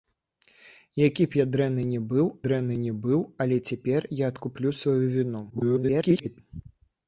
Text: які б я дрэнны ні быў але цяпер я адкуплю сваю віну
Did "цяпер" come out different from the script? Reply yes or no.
no